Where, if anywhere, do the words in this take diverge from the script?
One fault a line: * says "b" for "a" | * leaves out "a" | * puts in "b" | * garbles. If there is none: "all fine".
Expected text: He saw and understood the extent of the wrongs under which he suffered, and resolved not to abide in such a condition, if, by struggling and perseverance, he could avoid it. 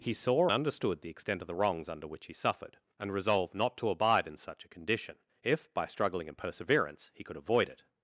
* leaves out "and"